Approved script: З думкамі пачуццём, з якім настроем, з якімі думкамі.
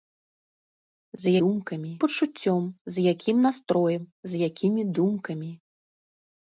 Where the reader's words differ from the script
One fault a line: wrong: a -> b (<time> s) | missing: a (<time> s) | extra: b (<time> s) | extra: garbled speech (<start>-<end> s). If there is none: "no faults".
no faults